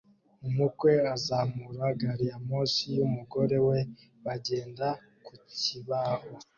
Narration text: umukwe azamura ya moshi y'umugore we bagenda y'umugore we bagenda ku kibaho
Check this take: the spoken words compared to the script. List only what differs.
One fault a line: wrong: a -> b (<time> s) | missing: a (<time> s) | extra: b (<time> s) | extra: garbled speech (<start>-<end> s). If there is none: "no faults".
extra: gari (2.0 s)
missing: y'umugore we bagenda (4.9 s)